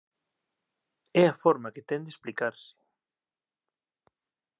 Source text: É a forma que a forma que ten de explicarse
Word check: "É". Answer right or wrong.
right